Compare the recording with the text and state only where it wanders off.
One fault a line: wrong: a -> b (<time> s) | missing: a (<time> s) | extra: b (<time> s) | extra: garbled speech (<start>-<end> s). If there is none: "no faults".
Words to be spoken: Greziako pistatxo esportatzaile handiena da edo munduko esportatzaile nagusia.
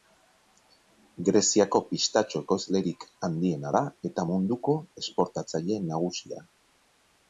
wrong: esportatzaile -> ekoizlerik (2.5 s)
wrong: edo -> eta (4.1 s)